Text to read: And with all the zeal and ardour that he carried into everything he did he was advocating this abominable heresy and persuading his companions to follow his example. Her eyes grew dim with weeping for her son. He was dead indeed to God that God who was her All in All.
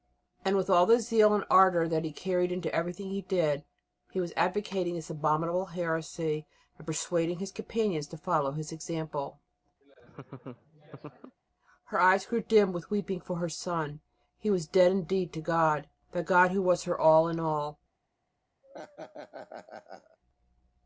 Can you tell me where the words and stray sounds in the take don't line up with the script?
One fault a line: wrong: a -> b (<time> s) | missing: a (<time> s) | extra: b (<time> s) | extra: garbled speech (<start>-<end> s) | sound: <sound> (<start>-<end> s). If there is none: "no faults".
sound: laugh (9.8-11.4 s)
sound: laugh (18.6-20.2 s)